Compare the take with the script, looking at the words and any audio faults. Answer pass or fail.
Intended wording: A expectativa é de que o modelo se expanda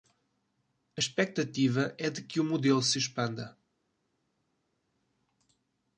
pass